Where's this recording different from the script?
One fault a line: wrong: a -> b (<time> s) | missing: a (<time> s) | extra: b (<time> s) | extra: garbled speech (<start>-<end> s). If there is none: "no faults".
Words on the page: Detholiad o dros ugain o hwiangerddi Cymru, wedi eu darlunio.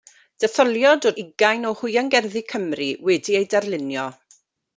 missing: dros (1.1 s)